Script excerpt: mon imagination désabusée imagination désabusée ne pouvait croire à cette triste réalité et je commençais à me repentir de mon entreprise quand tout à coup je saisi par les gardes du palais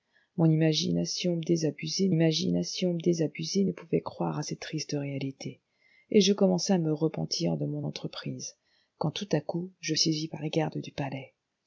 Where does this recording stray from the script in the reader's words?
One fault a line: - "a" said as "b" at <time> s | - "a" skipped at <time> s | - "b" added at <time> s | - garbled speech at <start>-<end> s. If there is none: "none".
none